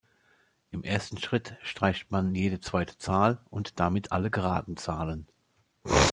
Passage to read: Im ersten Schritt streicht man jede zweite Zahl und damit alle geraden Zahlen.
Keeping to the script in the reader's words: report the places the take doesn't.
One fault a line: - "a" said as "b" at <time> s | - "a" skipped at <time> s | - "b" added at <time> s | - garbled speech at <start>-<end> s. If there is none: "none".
none